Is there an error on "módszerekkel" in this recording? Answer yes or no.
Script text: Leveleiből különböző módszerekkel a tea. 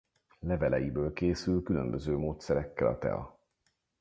no